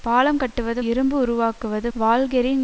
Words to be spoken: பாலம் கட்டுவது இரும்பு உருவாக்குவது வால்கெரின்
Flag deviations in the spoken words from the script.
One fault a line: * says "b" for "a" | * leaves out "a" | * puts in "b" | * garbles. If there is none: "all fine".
all fine